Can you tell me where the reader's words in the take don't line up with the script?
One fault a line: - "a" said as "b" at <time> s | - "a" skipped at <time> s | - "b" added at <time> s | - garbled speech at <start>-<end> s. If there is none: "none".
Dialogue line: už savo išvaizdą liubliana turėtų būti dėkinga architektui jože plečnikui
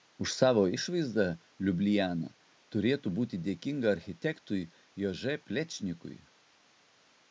none